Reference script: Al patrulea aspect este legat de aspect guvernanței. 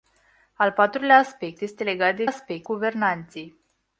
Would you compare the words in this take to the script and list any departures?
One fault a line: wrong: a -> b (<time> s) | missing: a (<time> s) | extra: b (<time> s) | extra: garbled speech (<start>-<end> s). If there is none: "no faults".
no faults